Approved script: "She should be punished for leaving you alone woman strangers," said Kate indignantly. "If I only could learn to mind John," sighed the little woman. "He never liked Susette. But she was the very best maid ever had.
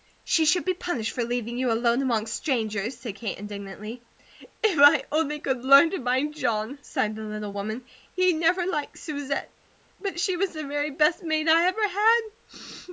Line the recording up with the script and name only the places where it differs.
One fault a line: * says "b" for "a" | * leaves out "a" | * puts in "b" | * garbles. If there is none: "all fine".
* says "among" for "woman"
* puts in "I"